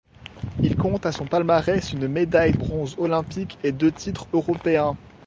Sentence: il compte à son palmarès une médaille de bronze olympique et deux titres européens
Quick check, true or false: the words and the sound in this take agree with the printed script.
false